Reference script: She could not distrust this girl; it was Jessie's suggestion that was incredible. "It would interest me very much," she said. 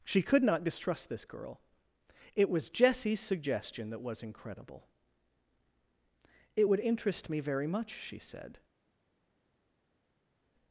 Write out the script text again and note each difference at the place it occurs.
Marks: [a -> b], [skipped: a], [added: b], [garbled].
She could not distrust this girl; it was Jessie's suggestion that was incredible. "It would interest me very much," she said.